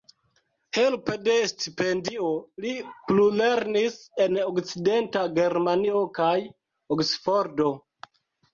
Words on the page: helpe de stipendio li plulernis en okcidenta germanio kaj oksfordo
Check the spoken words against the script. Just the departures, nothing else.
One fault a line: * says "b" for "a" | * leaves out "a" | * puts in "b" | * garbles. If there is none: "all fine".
all fine